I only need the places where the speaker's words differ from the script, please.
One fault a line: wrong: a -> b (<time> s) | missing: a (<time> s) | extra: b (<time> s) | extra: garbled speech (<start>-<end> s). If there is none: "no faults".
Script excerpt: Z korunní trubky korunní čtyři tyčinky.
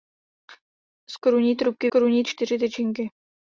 no faults